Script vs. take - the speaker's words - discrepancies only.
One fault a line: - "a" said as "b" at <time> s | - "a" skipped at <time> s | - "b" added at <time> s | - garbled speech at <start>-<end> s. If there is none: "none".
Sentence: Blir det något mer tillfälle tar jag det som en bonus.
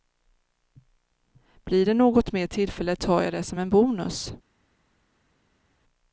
none